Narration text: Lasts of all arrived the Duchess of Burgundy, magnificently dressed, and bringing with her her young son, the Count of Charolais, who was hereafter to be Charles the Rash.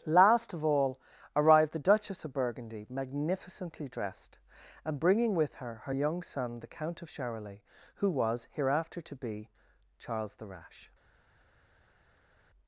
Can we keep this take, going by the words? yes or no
no